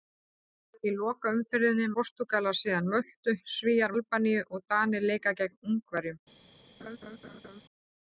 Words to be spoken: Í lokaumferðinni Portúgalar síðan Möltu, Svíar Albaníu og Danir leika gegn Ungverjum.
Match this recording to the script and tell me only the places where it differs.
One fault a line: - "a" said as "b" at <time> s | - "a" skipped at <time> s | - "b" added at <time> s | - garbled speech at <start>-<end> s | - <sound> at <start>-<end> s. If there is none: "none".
- laugh at 6.8-7.6 s